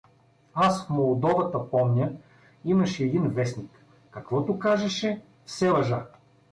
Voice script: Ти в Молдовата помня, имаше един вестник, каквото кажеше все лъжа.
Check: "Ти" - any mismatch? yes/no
yes